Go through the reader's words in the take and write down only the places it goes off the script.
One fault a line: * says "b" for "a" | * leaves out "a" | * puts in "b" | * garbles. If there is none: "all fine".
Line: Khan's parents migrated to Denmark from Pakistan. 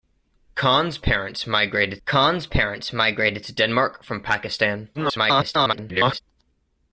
* puts in "khan's parents migrated"
* garbles